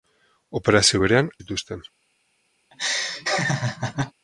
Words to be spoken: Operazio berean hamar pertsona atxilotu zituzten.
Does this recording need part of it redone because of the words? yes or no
yes